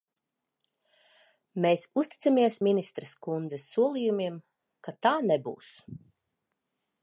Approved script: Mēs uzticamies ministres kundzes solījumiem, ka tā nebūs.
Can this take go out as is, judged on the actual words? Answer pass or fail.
pass